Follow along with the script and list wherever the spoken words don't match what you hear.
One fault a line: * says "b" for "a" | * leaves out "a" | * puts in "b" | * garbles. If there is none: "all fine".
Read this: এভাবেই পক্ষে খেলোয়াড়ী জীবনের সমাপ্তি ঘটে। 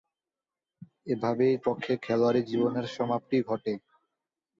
all fine